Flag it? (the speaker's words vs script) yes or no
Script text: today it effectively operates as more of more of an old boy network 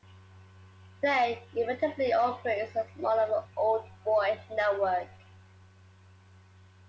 yes